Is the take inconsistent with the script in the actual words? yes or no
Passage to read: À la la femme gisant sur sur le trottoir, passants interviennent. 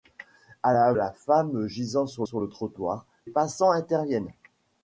no